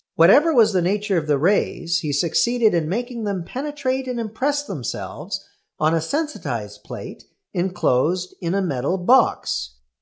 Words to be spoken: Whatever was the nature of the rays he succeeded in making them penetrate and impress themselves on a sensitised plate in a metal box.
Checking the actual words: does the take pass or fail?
fail